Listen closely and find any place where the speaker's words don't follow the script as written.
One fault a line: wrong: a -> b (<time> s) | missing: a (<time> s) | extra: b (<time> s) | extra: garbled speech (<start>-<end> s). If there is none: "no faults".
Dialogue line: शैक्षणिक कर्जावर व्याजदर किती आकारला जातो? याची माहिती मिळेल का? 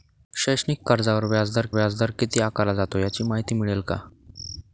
extra: व्याजदर (1.7 s)